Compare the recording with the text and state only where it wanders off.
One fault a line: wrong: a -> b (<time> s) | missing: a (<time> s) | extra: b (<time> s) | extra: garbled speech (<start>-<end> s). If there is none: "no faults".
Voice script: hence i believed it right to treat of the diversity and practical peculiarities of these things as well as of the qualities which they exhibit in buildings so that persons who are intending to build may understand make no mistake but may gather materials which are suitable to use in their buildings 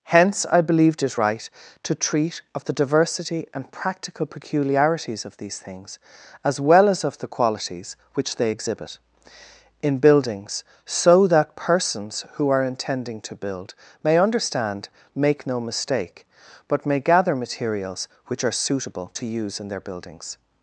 no faults